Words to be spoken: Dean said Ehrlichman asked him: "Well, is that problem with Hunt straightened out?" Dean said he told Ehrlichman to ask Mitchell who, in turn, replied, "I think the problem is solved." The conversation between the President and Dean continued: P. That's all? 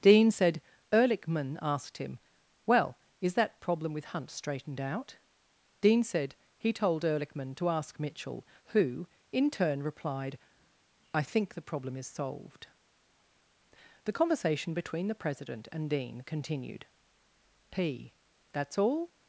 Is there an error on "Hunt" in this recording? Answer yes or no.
no